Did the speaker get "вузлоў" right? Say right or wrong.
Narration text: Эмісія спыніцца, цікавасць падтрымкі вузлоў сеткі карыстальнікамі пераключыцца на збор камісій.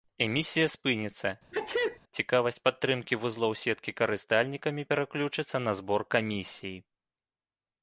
right